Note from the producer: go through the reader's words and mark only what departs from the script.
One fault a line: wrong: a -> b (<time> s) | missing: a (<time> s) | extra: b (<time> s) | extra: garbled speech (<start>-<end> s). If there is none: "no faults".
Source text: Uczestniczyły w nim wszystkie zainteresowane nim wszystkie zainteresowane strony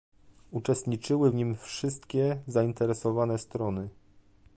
missing: nim wszystkie zainteresowane (3.4 s)